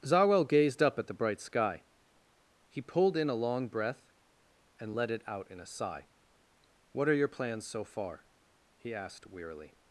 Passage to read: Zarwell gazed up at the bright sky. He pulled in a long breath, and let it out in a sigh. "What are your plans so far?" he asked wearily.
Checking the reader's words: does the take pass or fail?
pass